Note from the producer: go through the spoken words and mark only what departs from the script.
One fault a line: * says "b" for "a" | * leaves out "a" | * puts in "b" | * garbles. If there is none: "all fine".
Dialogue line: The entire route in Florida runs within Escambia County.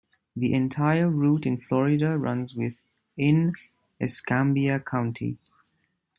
all fine